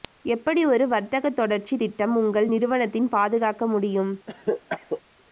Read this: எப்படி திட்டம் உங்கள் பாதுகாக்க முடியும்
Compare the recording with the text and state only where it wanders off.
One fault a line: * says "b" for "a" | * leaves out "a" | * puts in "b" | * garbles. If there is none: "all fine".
* puts in "ஒரு வர்த்தக தொடர்ச்சி"
* puts in "நிறுவனத்தின்"